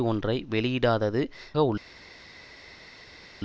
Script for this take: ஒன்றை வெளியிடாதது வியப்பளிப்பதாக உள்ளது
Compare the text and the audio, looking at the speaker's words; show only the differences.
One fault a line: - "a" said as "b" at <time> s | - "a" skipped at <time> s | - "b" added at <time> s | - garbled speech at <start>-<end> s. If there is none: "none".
- "வியப்பளிப்பதாக" skipped at 1.2 s